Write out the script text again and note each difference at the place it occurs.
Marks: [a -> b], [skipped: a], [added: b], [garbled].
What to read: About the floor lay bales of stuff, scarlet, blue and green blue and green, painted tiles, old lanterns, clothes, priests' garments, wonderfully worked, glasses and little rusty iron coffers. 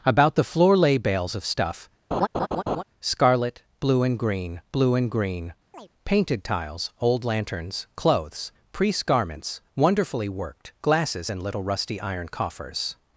About the floor lay bales of stuff, scarlet, blue and green blue and green, painted tiles, old lanterns, clothes, priests' garments, wonderfully worked, glasses and little rusty iron coffers.